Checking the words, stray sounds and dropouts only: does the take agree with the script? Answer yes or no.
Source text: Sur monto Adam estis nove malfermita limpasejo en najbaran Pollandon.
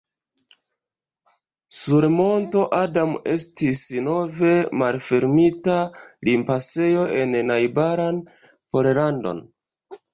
yes